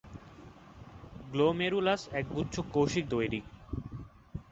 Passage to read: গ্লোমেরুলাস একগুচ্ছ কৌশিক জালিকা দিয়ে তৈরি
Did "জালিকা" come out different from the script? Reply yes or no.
yes